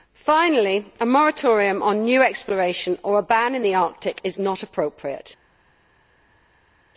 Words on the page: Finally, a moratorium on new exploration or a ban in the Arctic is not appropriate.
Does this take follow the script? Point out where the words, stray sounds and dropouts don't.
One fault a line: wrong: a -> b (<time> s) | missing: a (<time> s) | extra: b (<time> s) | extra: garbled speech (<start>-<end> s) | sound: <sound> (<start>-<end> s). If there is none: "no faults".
no faults